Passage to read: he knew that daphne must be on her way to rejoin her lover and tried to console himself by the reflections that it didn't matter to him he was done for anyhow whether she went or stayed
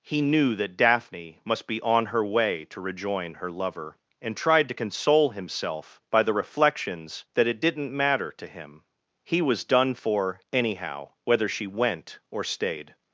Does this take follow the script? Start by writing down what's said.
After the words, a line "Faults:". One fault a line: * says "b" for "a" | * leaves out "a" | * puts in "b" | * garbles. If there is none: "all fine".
he knew that daphne must be on her way to rejoin her lover and tried to console himself by the reflections that it didn't matter to him he was done for anyhow whether she went or stayed
Faults:
all fine